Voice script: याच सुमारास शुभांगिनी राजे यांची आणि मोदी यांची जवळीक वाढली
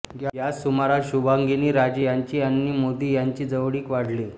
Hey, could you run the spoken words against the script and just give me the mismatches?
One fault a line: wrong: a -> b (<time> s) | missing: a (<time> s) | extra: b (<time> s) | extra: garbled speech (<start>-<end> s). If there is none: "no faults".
no faults